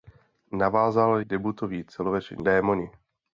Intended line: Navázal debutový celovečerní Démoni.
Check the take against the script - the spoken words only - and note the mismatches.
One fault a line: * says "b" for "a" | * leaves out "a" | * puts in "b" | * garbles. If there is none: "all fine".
all fine